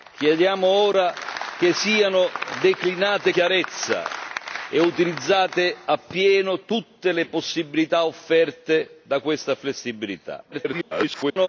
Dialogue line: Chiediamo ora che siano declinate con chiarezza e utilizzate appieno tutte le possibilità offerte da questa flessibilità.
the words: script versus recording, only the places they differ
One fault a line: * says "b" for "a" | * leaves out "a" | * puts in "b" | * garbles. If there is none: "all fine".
* leaves out "con"
* garbles